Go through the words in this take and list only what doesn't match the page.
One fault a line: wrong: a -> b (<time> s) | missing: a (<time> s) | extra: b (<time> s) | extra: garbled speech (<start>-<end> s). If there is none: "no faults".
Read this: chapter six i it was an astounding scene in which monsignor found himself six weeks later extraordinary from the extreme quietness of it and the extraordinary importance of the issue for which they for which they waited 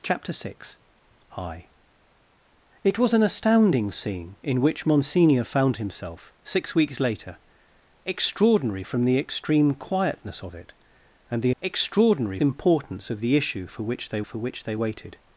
no faults